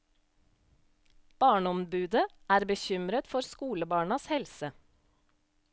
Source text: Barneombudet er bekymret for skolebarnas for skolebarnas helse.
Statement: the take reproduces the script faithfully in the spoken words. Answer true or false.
false